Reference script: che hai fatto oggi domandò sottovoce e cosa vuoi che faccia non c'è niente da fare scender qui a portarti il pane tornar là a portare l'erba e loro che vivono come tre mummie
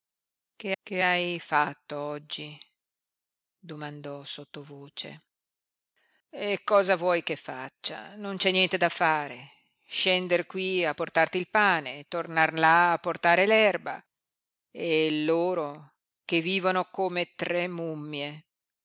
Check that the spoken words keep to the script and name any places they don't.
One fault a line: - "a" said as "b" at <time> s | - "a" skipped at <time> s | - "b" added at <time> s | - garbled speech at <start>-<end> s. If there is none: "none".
- "che" added at 0.8 s